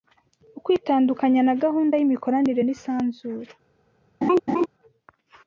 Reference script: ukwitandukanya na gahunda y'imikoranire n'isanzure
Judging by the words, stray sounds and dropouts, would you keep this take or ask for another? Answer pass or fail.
fail